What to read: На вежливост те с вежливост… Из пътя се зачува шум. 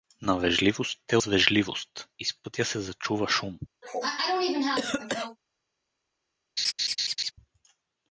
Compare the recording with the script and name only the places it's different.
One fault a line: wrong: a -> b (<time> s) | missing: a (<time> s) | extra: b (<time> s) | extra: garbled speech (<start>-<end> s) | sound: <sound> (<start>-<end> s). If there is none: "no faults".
sound: cough (3.8-5.4 s)
sound: laugh (6.6-7.3 s)